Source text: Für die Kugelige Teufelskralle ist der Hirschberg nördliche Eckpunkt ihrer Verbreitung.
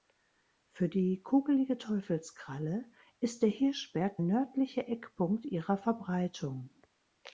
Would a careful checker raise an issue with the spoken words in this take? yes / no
no